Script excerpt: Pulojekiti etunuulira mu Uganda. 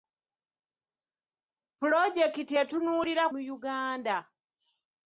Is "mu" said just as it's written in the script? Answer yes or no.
yes